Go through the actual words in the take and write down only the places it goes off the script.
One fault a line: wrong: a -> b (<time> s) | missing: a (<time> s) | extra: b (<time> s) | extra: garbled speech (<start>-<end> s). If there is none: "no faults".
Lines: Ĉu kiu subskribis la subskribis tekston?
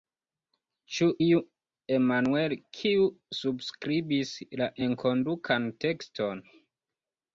extra: iu Emmanuel (1.3 s)
wrong: subskribis -> enkondukan (4.9 s)